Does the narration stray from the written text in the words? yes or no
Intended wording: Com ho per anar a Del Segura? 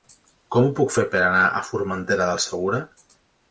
yes